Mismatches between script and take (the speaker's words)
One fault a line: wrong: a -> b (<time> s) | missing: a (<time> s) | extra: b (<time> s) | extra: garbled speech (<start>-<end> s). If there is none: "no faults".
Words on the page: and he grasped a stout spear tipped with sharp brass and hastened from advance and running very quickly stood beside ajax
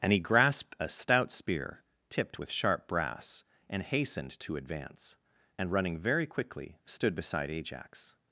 wrong: from -> to (4.4 s)